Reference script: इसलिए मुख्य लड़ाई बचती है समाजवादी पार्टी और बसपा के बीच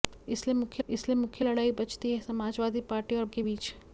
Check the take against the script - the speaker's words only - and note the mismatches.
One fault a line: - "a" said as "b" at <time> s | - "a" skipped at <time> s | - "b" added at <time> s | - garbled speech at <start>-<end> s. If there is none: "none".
- "इसलिए मुख्य" added at 0.9 s
- "बसपा" skipped at 3.2 s